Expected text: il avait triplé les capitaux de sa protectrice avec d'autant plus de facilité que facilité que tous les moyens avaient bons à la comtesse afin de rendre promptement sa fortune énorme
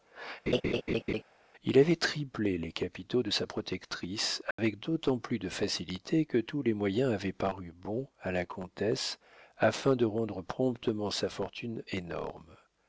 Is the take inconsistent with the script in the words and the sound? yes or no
yes